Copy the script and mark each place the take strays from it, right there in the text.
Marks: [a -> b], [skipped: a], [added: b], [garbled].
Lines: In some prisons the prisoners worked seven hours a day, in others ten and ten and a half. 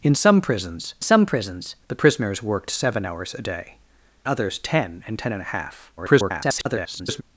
In some prisons [added: some prisons] the prisoners worked seven hours a day, [skipped: in] others ten and ten and a half. [garbled]